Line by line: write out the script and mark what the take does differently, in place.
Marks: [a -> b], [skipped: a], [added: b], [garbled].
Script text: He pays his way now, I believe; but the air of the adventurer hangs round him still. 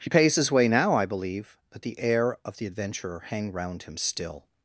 He pays his way now, I believe; but the air of the adventurer [hangs -> hang] round him still.